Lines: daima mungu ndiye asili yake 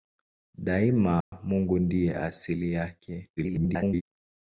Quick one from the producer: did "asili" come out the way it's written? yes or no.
yes